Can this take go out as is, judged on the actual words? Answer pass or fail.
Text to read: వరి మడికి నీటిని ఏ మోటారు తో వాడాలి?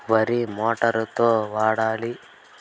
fail